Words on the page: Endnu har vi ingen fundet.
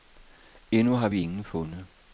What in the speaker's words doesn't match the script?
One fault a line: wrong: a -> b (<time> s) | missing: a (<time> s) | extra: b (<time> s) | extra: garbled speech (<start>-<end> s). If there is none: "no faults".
no faults